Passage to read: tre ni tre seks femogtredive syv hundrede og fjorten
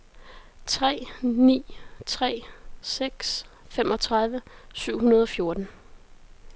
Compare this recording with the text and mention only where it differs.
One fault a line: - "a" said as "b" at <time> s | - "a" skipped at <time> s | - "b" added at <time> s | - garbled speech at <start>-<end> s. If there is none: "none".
none